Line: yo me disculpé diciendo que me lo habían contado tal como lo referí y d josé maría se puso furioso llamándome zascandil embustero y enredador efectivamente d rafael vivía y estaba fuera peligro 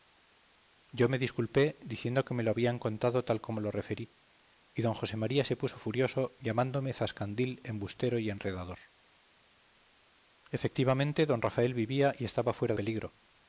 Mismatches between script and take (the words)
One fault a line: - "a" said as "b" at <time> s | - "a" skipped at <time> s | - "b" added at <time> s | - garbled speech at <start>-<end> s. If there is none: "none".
none